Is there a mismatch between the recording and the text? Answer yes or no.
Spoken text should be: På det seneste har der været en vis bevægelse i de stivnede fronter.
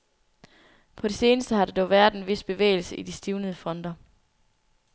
yes